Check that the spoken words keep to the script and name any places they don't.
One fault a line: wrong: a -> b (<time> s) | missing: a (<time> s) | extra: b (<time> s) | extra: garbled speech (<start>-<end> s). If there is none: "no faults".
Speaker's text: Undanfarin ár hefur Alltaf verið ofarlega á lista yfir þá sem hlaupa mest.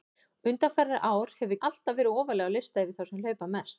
no faults